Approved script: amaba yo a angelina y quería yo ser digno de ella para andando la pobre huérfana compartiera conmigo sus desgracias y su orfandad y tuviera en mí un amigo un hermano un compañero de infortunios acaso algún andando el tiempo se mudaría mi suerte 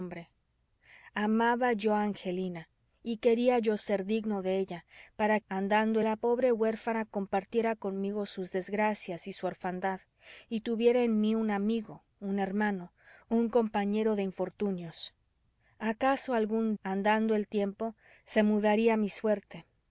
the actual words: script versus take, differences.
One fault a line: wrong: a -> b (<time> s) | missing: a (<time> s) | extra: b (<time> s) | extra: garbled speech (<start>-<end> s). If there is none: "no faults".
no faults